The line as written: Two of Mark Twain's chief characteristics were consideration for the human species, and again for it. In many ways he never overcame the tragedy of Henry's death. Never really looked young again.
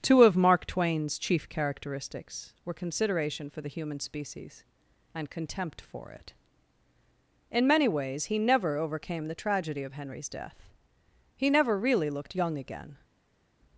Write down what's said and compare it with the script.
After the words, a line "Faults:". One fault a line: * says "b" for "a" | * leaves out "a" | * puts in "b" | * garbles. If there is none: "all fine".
Two of Mark Twain's chief characteristics were consideration for the human species, and contempt for it. In many ways he never overcame the tragedy of Henry's death. He never really looked young again.
Faults:
* says "contempt" for "again"
* puts in "He"